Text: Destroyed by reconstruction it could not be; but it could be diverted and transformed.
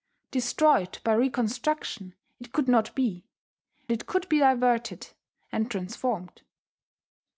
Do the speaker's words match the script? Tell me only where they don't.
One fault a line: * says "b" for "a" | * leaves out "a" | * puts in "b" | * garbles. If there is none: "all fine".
* leaves out "but"